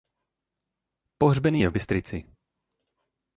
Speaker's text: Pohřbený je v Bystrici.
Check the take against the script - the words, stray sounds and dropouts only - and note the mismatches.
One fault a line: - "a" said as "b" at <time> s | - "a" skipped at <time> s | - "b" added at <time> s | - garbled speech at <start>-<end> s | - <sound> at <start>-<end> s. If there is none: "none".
none